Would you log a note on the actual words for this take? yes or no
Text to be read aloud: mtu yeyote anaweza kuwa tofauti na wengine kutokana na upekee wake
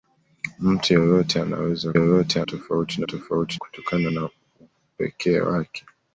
yes